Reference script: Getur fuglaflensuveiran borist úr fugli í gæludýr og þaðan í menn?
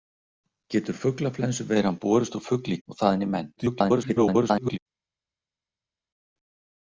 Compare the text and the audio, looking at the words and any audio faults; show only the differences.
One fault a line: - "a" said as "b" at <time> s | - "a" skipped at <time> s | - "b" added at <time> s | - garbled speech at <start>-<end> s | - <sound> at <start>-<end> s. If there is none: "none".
- "gæludýr" skipped at 2.8 s
- garbled speech at 3.6-4.8 s